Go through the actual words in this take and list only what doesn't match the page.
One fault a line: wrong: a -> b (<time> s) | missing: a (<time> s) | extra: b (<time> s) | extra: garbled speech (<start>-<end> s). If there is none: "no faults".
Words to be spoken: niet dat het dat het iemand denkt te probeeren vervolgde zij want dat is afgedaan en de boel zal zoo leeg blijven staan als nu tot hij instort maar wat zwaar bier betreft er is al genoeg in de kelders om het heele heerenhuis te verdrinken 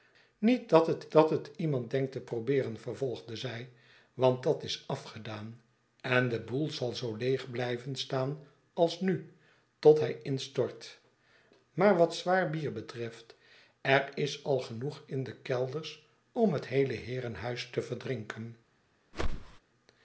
no faults